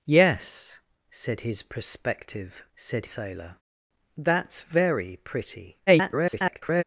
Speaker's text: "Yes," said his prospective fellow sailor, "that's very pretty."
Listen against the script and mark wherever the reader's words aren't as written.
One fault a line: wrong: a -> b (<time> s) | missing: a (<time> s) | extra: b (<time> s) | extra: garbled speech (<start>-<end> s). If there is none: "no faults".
wrong: fellow -> said (2.8 s)
extra: garbled speech (5.9-6.8 s)